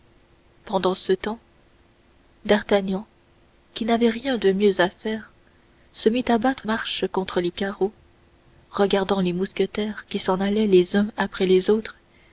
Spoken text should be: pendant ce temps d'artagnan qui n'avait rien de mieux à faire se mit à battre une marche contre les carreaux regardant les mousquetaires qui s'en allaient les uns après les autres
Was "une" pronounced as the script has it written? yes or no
no